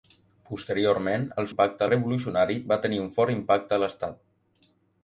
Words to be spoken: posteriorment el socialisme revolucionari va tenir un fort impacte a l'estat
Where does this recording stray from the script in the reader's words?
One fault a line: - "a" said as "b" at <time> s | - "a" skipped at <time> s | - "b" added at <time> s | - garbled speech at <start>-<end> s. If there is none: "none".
- "socialisme" said as "impacte" at 1.5 s